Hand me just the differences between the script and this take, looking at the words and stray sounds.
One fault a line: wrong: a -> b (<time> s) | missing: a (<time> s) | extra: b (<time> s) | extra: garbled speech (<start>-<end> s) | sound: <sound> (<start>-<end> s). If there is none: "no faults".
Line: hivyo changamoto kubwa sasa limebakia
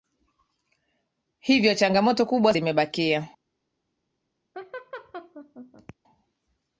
missing: sasa (2.5 s)
sound: laugh (4.5-5.9 s)